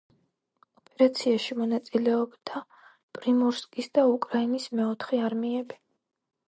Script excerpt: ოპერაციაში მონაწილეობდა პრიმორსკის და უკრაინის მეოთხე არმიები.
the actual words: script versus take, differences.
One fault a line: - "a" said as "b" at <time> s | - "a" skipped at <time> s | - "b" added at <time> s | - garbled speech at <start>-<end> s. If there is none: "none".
none